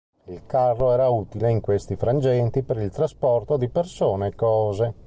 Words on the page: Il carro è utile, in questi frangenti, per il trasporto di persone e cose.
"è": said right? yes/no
no